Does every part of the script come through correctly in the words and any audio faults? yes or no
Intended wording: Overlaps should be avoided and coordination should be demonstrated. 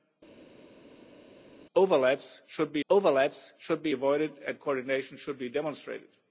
no